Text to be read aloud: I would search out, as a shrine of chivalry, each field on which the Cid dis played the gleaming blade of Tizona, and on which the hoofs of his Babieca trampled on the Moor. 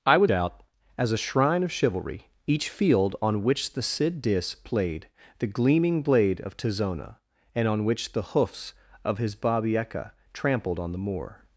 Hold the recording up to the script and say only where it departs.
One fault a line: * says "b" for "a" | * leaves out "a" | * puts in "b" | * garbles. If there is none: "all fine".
* leaves out "search"